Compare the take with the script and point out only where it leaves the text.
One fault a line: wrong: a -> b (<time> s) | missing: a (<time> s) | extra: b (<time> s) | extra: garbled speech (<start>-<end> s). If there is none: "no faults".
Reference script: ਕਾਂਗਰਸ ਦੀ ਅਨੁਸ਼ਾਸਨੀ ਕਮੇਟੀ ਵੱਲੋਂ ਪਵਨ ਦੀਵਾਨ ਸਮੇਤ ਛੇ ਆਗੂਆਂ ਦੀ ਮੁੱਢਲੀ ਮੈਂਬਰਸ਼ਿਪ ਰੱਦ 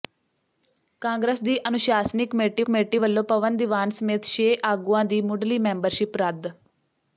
extra: ਕਮੇਟੀ (2.6 s)